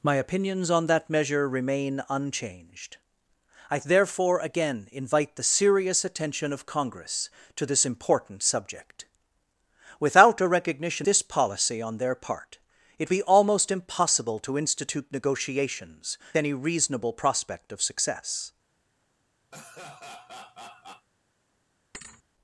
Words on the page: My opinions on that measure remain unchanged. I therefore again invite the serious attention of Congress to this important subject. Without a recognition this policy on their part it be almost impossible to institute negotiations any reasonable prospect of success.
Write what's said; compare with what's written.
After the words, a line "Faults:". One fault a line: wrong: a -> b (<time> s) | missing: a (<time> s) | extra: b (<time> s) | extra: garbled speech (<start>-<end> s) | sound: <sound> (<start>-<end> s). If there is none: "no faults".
My opinions on that measure remain unchanged. I therefore again invite the serious attention of Congress to this important subject. Without a recognition this policy on their part it be almost impossible to institute negotiations any reasonable prospect of success.
Faults:
sound: laugh (19.5-21.1 s)
sound: thud (21.9-22.2 s)